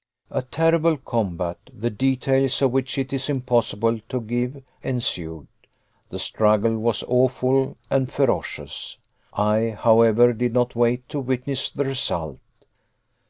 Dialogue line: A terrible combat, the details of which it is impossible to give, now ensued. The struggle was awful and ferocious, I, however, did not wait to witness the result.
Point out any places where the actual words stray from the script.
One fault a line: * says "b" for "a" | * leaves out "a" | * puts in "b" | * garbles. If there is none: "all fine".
* leaves out "now"